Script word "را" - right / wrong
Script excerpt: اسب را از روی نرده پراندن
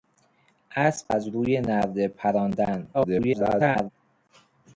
wrong